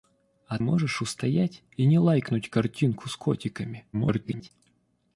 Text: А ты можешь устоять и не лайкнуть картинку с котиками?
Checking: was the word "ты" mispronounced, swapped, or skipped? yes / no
yes